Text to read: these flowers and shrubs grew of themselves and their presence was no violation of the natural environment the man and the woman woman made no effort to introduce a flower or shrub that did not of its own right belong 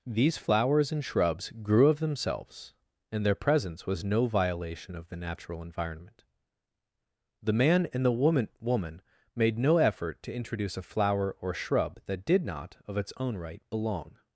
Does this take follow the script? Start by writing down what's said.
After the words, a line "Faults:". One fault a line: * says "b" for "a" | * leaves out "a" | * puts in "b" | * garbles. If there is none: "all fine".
these flowers and shrubs grew of themselves and their presence was no violation of the natural environment the man and the woman woman made no effort to introduce a flower or shrub that did not of its own right belong
Faults:
all fine